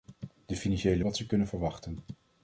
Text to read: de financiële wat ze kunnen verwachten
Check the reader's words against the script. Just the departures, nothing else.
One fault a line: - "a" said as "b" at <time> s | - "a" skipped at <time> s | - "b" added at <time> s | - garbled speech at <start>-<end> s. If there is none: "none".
none